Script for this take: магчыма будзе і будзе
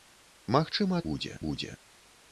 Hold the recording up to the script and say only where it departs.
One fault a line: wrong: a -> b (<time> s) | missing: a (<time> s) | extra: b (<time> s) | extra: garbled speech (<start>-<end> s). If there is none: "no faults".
no faults